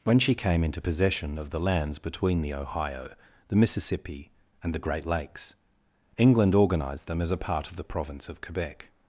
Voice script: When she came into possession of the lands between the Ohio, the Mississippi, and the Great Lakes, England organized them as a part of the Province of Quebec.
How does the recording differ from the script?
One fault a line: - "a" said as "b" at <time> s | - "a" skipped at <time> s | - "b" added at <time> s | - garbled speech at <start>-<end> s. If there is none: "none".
none